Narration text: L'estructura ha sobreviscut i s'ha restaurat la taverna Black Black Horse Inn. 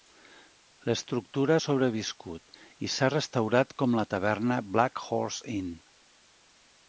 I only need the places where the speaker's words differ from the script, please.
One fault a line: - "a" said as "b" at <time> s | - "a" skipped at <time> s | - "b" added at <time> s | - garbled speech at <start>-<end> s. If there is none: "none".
- "com" added at 3.8 s
- "Black" skipped at 5.0 s